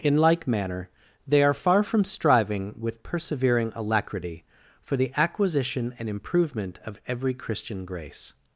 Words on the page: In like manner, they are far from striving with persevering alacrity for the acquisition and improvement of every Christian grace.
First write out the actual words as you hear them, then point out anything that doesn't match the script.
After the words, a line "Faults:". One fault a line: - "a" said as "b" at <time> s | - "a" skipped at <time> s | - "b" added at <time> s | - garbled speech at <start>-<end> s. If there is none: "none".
In like manner, they are far from striving with persevering alacrity for the acquisition and improvement of every Christian grace.
Faults:
none